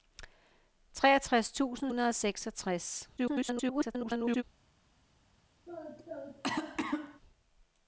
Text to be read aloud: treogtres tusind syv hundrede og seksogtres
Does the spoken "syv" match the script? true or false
false